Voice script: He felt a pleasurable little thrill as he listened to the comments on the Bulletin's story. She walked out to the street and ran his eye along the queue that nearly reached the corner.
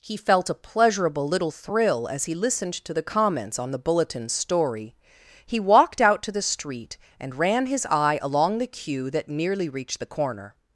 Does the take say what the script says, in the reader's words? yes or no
no